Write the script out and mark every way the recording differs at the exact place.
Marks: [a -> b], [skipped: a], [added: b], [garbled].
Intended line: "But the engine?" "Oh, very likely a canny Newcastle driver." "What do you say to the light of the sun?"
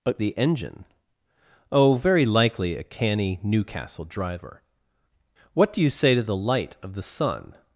"But the engine?" "Oh, very likely a canny Newcastle driver." "What do you say to the light of the sun?"